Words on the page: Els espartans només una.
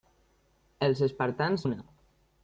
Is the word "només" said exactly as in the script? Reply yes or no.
no